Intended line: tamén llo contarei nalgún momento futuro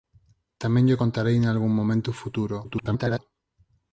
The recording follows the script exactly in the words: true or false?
false